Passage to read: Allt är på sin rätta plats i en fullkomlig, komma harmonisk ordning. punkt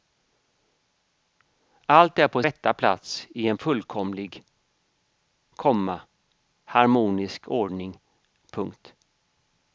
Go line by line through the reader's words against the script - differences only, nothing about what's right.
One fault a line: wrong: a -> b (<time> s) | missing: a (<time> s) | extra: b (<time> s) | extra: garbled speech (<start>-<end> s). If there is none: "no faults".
missing: sin (2.4 s)